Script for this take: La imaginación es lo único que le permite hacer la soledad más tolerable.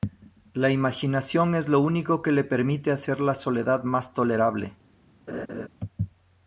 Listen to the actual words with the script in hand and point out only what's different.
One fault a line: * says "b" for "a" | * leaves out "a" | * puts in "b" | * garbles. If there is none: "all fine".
all fine